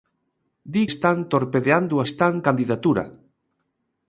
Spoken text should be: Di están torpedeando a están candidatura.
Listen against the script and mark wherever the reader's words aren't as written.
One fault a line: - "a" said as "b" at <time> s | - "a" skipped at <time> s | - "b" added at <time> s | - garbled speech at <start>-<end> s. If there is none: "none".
none